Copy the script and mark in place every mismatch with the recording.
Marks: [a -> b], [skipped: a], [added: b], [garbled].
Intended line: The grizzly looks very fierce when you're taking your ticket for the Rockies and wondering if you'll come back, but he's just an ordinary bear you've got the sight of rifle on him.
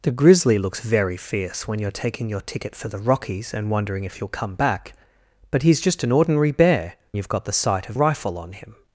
The grizzly looks very fierce when you're taking your ticket for the Rockies and wondering if you'll come back, but he's just an ordinary bear you've got the sight of rifle on him.